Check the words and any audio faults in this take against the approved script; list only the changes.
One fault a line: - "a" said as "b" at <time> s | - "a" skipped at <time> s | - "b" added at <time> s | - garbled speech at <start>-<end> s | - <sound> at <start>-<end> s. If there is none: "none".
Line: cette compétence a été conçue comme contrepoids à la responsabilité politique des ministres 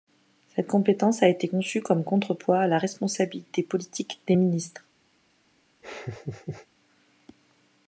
- laugh at 5.8-6.7 s